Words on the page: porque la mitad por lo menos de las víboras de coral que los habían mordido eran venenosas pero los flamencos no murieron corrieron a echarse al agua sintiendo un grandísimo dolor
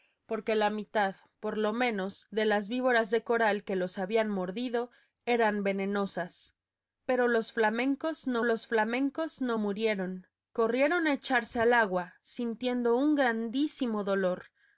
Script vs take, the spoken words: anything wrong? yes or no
yes